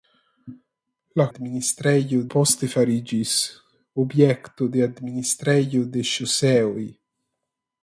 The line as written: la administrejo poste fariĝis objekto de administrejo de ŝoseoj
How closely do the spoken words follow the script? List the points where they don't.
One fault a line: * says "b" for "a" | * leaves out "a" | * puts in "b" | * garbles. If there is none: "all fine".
all fine